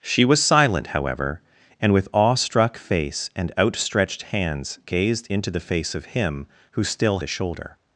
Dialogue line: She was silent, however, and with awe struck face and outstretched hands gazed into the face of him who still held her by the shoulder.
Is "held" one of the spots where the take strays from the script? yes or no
yes